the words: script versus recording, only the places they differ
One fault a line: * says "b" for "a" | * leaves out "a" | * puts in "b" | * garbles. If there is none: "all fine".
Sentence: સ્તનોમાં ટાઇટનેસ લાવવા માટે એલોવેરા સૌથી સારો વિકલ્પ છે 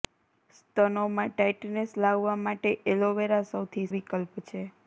* leaves out "સારો"